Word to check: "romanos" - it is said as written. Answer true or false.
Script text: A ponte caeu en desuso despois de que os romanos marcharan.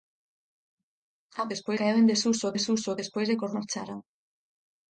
false